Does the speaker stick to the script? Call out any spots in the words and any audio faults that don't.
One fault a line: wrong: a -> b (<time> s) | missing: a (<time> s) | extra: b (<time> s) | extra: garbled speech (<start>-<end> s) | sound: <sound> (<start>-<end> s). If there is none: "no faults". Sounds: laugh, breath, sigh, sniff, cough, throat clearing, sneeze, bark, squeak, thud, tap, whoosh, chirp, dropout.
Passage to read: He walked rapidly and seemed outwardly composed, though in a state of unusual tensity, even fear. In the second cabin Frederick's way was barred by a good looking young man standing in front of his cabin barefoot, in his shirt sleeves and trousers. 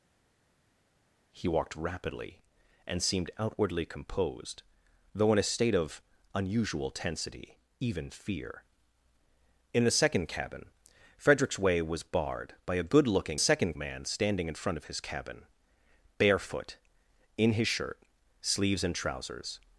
wrong: young -> second (13.4 s)